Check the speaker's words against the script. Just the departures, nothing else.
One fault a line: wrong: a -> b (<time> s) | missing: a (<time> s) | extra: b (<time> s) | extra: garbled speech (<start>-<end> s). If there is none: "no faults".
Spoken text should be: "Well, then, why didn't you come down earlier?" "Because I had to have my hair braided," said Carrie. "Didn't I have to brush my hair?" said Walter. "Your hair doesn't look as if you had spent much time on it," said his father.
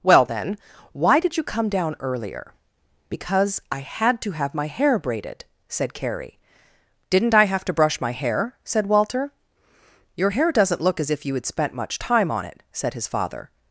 wrong: didn't -> did (1.2 s)